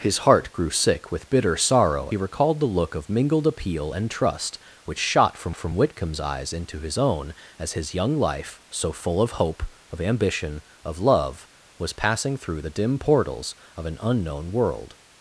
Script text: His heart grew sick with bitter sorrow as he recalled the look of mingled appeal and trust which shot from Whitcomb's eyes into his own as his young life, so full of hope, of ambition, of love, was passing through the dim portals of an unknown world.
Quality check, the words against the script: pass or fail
fail